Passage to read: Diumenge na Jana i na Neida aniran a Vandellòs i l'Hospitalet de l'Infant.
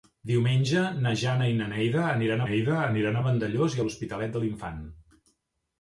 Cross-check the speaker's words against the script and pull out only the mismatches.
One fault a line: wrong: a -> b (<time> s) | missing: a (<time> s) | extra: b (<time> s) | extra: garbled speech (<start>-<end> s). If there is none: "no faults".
extra: Neida aniran (2.5 s)